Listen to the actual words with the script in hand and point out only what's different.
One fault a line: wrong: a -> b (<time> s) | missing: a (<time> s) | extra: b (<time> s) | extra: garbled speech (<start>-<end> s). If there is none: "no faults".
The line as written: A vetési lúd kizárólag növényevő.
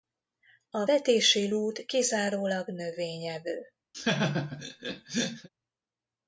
no faults